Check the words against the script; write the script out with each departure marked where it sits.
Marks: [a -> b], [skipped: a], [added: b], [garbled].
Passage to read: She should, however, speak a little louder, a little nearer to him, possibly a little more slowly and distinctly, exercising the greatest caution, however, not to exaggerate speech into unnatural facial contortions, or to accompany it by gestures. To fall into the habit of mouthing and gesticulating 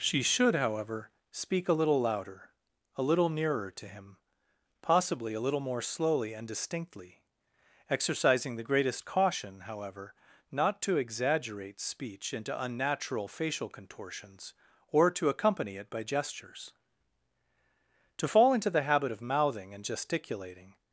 She should, however, speak a little louder, a little nearer to him, possibly a little more slowly and distinctly, exercising the greatest caution, however, not to exaggerate speech into unnatural facial contortions, or to accompany it by gestures. To fall into the habit of mouthing and gesticulating